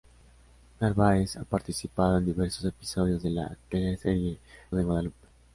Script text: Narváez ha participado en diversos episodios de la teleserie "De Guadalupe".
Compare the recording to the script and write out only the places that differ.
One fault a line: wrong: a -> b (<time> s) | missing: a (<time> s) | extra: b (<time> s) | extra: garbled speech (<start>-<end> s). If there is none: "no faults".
no faults